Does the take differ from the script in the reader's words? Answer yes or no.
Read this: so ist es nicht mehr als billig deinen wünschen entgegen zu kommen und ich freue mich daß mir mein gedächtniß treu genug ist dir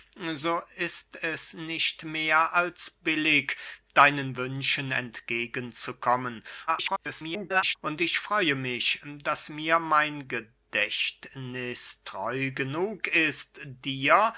yes